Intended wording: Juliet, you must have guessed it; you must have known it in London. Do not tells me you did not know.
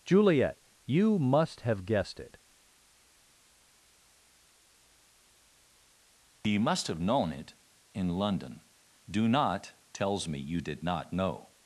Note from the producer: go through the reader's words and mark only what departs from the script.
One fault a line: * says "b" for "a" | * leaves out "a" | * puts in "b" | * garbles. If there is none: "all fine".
all fine